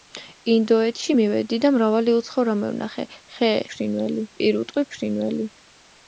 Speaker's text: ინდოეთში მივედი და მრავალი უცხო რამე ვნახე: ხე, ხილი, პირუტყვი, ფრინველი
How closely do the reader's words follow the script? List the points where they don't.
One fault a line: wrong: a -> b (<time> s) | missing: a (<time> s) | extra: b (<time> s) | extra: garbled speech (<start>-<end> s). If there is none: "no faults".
wrong: ხილი -> ფრინველი (3.7 s)